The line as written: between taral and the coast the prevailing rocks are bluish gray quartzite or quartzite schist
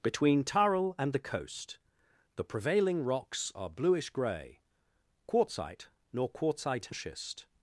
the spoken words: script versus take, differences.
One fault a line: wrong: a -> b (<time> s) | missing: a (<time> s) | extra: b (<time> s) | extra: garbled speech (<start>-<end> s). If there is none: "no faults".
wrong: or -> nor (6.1 s)